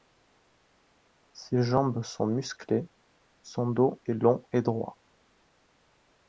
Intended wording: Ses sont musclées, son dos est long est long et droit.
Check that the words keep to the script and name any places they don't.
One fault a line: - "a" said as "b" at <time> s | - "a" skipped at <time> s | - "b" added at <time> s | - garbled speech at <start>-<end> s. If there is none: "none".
- "jambes" added at 1.6 s
- "est long" skipped at 4.4 s